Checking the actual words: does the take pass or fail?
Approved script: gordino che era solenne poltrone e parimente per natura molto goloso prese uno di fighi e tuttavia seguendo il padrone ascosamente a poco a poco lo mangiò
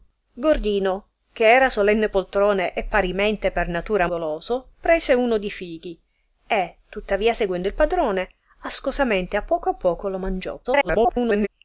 fail